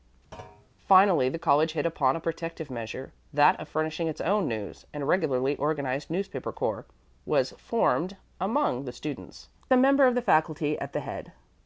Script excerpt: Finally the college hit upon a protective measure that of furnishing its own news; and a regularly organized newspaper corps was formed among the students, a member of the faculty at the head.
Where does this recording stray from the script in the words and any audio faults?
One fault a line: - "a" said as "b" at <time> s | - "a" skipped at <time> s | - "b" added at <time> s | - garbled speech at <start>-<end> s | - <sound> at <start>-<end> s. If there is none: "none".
- thud at 0.3-0.7 s